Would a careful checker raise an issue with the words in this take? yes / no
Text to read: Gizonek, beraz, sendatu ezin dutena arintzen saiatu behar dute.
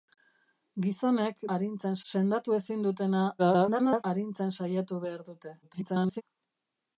yes